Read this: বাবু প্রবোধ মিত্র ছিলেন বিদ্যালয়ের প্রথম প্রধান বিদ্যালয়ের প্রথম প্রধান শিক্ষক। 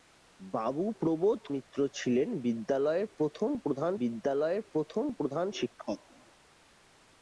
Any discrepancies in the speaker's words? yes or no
no